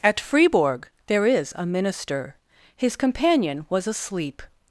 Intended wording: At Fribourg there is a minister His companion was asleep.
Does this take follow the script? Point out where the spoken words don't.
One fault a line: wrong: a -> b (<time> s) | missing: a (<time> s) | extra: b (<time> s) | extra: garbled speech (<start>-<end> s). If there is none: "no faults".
no faults